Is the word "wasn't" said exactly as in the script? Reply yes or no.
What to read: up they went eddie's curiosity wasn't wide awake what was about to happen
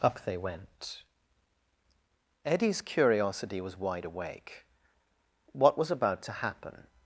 no